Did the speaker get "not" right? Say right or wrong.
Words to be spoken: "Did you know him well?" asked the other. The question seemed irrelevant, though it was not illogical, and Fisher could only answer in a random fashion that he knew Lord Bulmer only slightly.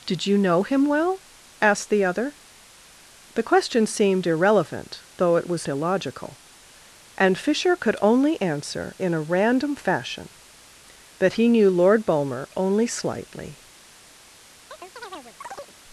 wrong